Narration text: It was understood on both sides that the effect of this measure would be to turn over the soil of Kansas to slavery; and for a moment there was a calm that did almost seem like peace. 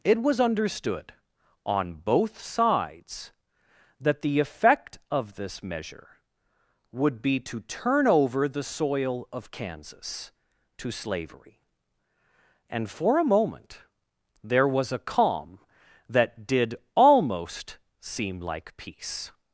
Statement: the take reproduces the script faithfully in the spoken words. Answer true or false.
true